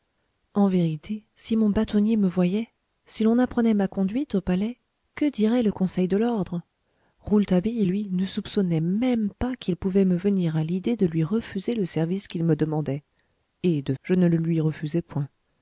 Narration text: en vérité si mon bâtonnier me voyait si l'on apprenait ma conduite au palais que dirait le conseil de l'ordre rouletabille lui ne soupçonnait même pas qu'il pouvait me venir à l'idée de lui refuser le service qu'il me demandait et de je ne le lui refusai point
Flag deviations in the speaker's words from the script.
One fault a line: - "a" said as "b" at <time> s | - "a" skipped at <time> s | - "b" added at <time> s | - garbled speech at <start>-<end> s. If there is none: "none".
none